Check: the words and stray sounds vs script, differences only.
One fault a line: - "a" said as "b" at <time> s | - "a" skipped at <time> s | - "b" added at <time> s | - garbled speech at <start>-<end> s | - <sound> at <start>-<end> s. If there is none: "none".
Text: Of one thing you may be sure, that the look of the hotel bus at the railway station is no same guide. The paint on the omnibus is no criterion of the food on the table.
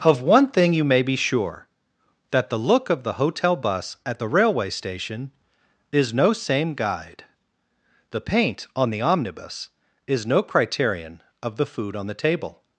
none